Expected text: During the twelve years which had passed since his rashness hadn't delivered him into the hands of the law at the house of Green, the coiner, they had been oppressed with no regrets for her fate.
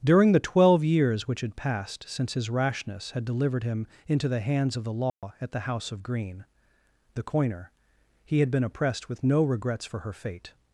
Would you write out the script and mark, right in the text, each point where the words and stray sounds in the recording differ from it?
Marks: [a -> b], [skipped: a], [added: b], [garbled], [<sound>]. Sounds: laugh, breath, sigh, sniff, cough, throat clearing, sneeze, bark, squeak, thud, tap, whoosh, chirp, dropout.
During the twelve years which had passed since his rashness [hadn't -> had] delivered him into the hands of the law [dropout] at the house of Green, the coiner, [they -> he] had been oppressed with no regrets for her fate.